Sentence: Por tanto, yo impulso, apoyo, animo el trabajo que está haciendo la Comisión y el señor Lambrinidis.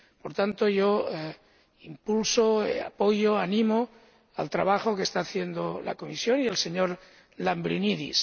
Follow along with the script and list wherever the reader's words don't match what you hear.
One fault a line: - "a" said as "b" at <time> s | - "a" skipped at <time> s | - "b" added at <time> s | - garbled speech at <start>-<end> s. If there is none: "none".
none